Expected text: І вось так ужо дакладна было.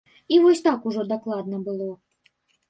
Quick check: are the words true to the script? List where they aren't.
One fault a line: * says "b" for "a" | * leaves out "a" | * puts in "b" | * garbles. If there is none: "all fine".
all fine